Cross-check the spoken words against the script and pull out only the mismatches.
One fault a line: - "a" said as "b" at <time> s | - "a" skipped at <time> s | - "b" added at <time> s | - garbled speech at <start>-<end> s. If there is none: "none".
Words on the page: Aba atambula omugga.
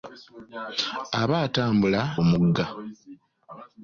none